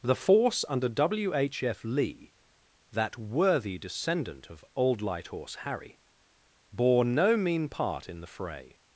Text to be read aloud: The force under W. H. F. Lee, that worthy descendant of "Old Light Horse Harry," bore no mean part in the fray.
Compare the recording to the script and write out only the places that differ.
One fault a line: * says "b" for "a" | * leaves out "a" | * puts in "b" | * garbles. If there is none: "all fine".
all fine